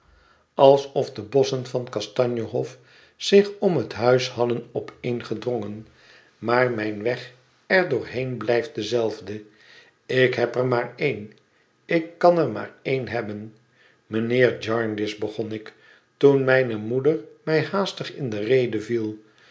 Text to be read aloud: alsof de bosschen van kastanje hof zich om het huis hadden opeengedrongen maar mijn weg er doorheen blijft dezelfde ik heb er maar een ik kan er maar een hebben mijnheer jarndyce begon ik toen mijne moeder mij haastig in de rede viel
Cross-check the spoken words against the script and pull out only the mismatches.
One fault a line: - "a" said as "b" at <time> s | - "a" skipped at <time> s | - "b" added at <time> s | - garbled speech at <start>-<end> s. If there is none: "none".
none